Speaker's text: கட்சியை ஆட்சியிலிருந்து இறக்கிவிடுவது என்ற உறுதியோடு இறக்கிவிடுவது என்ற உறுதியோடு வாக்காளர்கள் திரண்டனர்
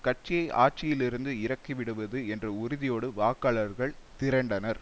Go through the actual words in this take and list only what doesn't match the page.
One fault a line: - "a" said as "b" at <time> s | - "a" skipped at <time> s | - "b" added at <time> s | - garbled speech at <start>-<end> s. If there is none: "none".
- "இறக்கிவிடுவது என்ற உறுதியோடு" skipped at 3.1 s